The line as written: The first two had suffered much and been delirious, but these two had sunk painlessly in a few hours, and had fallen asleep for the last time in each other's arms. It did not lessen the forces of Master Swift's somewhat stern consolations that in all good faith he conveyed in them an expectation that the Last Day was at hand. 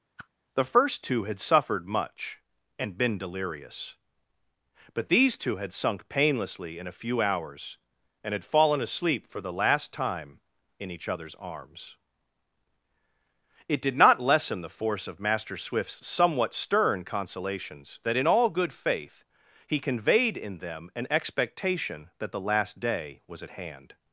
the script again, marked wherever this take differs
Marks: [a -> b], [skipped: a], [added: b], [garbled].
The first two had suffered much and been delirious, but these two had sunk painlessly in a few hours, and had fallen asleep for the last time in each other's arms. It did not lessen the [forces -> force] of Master Swift's somewhat stern consolations that in all good faith he conveyed in them an expectation that the Last Day was at hand.